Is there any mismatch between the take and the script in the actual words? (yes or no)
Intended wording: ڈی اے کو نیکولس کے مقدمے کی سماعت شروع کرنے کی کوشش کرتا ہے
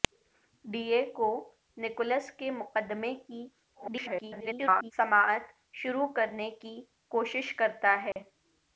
yes